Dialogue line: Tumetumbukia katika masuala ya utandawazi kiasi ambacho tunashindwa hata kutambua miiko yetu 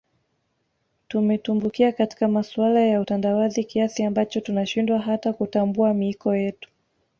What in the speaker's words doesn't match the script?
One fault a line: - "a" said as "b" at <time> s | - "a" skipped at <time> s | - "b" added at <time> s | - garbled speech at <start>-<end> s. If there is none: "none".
none